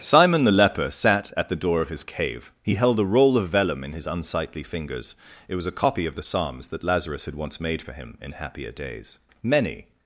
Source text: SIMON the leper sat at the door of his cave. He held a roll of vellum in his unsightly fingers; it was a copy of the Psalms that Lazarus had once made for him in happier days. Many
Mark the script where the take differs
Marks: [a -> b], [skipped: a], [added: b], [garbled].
SIMON the leper sat at the door of his cave. He held a roll of vellum in his unsightly fingers; it was a copy of the Psalms that Lazarus had once made for him in happier days. Many